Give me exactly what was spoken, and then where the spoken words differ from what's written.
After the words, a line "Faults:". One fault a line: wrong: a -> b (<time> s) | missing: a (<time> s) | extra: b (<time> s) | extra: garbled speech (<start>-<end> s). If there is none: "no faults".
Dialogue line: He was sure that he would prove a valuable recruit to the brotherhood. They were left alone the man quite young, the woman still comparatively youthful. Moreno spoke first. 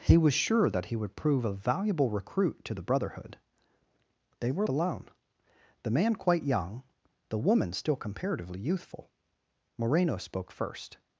He was sure that he would prove a valuable recruit to the brotherhood. They were alone the man quite young, the woman still comparatively youthful. Moreno spoke first.
Faults:
missing: left (4.7 s)